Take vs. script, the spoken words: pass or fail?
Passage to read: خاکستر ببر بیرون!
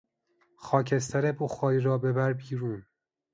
fail